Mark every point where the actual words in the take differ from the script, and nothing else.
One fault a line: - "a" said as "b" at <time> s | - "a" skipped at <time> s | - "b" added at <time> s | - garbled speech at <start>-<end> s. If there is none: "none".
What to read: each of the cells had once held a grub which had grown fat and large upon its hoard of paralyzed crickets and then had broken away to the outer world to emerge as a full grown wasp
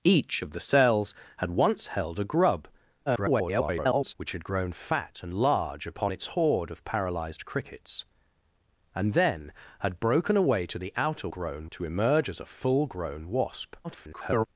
- garbled speech at 3.1-4.1 s
- "world" said as "grown" at 11.3 s
- garbled speech at 13.8-14.5 s